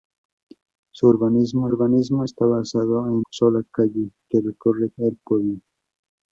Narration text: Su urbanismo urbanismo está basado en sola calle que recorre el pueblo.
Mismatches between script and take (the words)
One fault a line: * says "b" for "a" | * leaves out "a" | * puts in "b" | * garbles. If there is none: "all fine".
all fine